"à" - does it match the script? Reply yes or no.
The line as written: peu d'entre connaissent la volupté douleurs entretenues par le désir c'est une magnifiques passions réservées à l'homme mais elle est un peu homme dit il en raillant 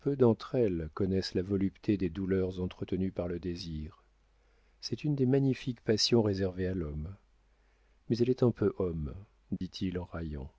yes